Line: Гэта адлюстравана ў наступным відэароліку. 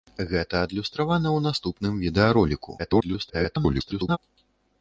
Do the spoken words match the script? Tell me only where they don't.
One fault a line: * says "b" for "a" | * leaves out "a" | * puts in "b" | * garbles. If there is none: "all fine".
* garbles